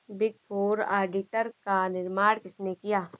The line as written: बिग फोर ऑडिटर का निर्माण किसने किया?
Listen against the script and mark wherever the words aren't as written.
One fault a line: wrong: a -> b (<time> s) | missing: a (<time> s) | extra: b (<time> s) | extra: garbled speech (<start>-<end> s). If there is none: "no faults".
no faults